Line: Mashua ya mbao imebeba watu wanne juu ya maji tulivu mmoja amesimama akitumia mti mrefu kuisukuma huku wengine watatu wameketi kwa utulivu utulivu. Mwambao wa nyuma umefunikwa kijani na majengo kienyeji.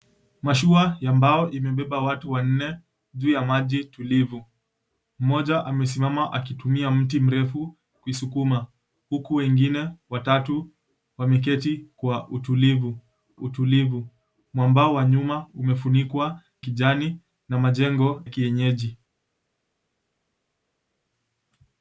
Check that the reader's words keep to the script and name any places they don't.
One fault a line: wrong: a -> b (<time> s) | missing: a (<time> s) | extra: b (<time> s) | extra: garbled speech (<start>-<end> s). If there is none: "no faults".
no faults